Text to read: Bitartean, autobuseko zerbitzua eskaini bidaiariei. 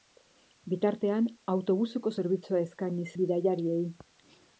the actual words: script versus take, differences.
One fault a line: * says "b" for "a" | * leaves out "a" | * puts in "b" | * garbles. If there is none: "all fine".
all fine